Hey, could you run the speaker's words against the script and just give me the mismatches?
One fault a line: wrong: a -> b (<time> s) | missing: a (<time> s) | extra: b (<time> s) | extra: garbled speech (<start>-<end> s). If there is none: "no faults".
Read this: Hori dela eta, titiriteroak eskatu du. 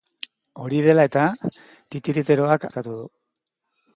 no faults